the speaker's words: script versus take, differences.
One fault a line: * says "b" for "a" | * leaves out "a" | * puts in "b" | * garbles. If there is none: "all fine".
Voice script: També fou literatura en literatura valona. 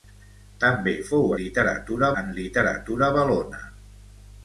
all fine